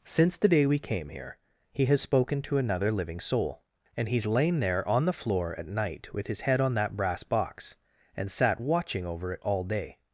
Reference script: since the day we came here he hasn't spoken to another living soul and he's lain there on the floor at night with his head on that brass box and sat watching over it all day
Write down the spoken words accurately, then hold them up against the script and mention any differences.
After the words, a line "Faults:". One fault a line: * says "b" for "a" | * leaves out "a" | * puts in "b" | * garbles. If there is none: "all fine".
since the day we came here he has spoken to another living soul and he's lain there on the floor at night with his head on that brass box and sat watching over it all day
Faults:
* says "has" for "hasn't"